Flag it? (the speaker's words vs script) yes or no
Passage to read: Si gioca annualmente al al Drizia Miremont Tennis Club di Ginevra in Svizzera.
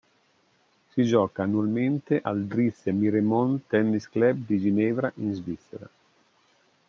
yes